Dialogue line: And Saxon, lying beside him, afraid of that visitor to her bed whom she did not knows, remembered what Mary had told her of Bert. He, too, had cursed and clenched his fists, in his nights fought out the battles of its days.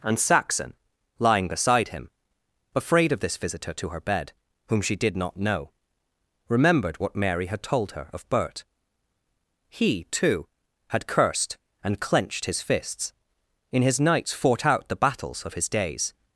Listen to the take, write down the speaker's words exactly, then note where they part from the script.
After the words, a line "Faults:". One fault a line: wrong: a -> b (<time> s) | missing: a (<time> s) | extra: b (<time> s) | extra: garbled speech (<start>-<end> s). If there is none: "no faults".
And Saxon, lying beside him, afraid of this visitor to her bed whom she did not know, remembered what Mary had told her of Bert. He, too, had cursed and clenched his fists, in his nights fought out the battles of his days.
Faults:
wrong: that -> this (3.2 s)
wrong: knows -> know (5.4 s)
wrong: its -> his (15.5 s)